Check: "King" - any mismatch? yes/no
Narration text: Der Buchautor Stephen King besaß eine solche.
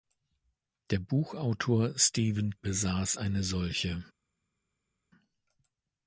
yes